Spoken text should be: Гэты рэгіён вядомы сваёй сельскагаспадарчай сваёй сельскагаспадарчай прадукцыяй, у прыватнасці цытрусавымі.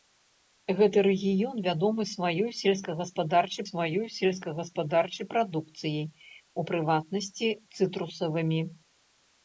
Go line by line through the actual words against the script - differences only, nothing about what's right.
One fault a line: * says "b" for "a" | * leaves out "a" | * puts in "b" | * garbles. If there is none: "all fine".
all fine